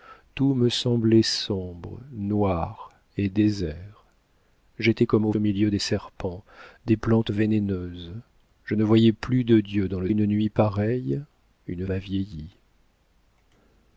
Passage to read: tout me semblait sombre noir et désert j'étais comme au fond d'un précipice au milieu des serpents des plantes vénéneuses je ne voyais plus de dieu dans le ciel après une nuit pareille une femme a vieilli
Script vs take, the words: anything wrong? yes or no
yes